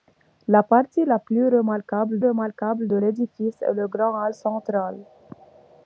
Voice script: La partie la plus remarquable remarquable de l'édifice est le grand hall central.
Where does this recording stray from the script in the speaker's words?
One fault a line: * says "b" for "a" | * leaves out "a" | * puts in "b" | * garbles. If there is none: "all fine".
all fine